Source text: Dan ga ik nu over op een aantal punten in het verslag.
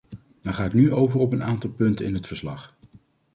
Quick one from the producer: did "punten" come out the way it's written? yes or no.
yes